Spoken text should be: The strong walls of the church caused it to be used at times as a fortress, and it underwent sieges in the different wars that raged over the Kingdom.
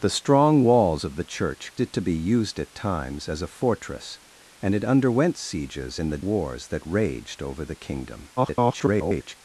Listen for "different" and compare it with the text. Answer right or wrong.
wrong